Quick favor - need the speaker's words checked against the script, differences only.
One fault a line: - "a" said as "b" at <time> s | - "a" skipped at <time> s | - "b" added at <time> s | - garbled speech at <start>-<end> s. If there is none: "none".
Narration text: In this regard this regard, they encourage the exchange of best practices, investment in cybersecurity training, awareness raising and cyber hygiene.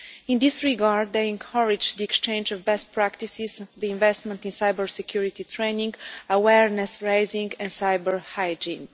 - "this regard" skipped at 1.1 s